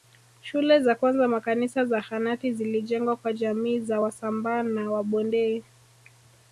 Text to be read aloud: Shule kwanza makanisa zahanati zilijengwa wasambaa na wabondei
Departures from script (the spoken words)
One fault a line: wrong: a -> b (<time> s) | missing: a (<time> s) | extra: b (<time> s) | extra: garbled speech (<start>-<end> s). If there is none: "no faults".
extra: za (0.8 s)
extra: kwa jamii za (3.2 s)